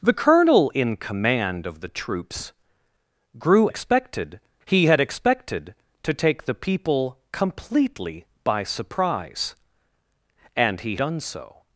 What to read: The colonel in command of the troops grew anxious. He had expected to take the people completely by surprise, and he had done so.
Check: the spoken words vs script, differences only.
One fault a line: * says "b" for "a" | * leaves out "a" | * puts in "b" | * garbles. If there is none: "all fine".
* says "expected" for "anxious"
* leaves out "had"